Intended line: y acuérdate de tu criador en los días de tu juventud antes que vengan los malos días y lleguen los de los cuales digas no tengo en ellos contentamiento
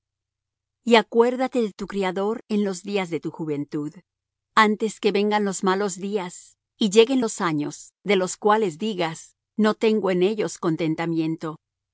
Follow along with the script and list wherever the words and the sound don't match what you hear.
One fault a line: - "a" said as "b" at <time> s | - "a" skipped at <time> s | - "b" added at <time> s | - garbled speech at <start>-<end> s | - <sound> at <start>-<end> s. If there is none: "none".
- "años" added at 7.4 s